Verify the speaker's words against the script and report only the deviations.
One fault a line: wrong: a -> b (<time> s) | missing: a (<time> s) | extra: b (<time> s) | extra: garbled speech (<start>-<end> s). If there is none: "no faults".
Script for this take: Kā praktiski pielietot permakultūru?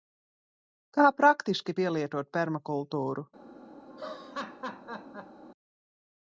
no faults